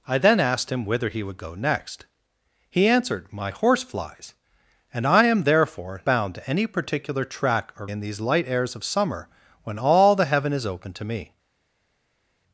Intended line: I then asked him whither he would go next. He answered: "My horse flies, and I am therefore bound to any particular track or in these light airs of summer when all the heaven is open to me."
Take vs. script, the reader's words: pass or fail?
pass